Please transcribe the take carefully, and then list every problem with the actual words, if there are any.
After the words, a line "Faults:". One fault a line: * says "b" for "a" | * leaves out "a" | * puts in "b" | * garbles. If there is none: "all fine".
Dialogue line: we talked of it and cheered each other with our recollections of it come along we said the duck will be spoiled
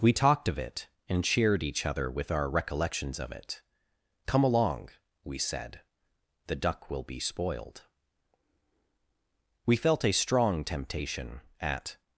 we talked of it and cheered each other with our recollections of it come along we said the duck will be spoiled we felt a strong temptation at
Faults:
* puts in "we felt a strong temptation at"